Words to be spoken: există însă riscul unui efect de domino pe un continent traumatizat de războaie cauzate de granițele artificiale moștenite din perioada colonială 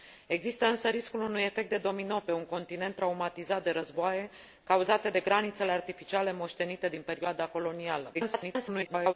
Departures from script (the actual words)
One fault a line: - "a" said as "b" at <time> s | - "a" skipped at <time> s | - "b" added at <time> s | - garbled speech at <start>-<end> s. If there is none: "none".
- garbled speech at 8.1-9.1 s